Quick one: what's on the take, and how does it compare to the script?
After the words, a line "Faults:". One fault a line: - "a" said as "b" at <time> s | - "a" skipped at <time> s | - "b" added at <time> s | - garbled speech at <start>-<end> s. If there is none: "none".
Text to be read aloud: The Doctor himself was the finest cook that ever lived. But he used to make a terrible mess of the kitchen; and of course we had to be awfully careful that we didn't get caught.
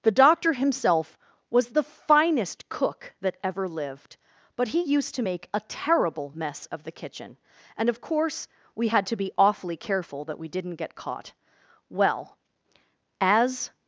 The Doctor himself was the finest cook that ever lived. But he used to make a terrible mess of the kitchen; and of course we had to be awfully careful that we didn't get caught. Well, as
Faults:
- "Well as" added at 11.9 s